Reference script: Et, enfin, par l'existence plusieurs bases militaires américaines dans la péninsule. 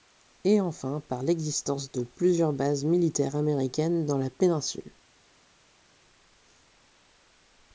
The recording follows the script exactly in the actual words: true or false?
false